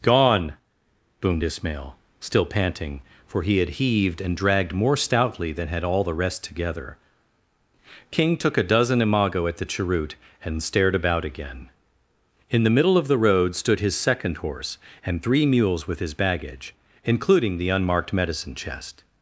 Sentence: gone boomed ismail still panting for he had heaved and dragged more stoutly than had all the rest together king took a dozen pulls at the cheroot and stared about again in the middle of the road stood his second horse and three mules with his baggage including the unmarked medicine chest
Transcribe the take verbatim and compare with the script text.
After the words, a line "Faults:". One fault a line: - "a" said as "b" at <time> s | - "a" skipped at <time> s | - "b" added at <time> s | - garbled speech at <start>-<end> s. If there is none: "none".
gone boomed ismail still panting for he had heaved and dragged more stoutly than had all the rest together king took a dozen imago at the cheroot and stared about again in the middle of the road stood his second horse and three mules with his baggage including the unmarked medicine chest
Faults:
- "pulls" said as "imago" at 9.0 s